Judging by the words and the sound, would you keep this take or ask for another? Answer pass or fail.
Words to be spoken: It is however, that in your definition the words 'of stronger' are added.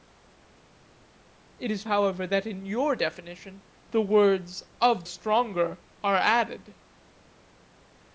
pass